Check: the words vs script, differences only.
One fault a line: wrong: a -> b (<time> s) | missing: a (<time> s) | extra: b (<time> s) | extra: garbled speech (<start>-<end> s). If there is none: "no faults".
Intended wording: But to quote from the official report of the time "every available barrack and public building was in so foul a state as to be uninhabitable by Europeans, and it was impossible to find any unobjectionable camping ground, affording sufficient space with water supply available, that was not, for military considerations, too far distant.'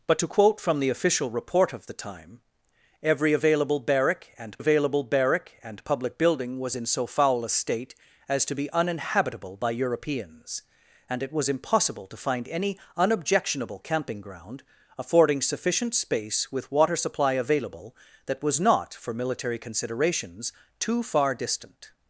extra: available barrack and (4.6 s)